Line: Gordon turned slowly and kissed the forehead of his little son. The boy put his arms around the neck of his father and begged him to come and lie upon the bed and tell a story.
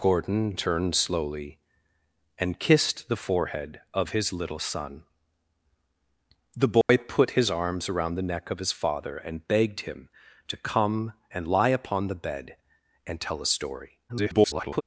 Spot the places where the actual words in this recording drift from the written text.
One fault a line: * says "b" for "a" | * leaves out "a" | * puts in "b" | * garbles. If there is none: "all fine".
* garbles